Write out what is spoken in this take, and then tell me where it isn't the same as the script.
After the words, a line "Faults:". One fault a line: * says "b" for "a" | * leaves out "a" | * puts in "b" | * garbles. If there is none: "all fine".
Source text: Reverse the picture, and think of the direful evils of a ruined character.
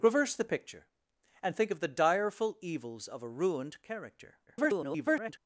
Reverse the picture, and think of the direful evils of a ruined character. [garbled]
Faults:
* garbles